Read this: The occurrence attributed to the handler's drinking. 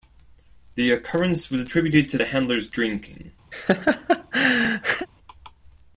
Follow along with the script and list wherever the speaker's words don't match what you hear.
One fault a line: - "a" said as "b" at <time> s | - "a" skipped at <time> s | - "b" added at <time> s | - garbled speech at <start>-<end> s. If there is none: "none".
- "was" added at 1.5 s